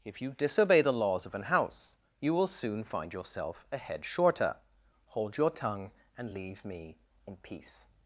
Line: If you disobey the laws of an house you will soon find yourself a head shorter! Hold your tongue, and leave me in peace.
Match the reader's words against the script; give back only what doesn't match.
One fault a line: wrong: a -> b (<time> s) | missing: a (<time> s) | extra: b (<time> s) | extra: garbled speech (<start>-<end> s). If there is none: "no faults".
no faults